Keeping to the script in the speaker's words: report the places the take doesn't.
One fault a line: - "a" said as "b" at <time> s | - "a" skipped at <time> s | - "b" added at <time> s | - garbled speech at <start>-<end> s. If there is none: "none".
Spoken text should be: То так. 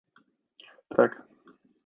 none